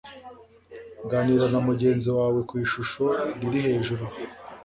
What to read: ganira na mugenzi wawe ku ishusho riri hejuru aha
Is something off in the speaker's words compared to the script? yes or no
no